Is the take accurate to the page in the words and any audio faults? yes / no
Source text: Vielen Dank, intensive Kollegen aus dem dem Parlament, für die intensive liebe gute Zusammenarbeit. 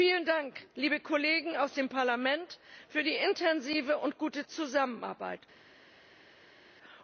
no